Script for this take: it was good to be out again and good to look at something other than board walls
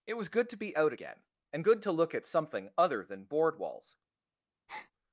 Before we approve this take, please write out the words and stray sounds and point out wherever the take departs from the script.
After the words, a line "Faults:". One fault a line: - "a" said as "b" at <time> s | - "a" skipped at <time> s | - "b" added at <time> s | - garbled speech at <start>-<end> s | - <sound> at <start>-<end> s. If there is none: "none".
it was good to be out again and good to look at something other than board walls
Faults:
- breath at 4.7-4.9 s